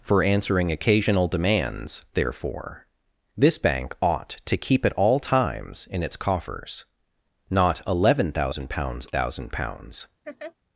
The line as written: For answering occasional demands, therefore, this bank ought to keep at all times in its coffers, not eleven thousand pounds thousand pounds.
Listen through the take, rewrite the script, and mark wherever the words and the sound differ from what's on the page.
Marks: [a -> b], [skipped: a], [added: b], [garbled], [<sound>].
For answering occasional demands, therefore, this bank ought to keep at all times in its coffers, not eleven thousand pounds thousand pounds. [laugh]